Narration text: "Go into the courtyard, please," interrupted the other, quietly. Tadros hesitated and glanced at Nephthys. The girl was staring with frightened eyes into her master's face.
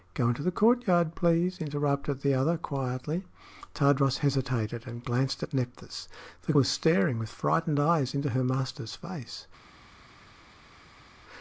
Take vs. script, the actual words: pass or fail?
fail